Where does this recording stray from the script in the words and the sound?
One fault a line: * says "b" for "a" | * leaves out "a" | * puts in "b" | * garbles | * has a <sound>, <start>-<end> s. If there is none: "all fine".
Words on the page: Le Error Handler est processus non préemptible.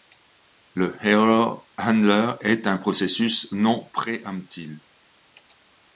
* puts in "un"